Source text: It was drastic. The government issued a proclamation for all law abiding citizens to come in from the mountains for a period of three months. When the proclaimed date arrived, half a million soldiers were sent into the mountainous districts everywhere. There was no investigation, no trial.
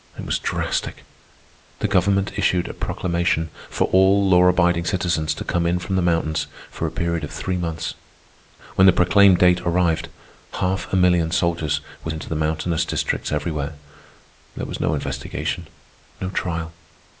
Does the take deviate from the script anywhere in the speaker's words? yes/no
yes